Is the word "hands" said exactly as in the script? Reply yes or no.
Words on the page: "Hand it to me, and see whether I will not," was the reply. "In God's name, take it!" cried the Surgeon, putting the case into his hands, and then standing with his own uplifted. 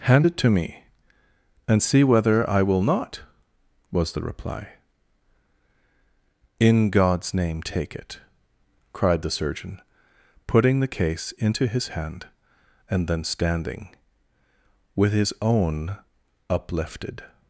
no